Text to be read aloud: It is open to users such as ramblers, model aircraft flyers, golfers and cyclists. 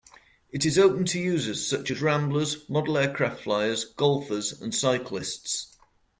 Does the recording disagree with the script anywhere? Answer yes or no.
no